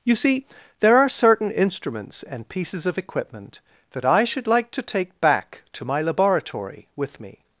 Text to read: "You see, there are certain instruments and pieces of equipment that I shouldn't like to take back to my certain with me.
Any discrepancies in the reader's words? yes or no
yes